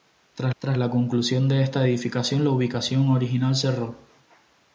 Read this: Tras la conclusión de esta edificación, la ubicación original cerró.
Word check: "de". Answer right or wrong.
right